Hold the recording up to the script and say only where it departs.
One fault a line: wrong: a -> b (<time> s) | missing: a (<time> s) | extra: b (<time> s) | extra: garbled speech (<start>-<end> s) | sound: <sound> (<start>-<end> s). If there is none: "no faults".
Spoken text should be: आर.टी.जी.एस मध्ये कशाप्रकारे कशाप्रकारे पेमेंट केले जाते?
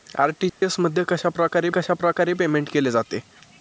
sound: dropout (0.5-0.6 s)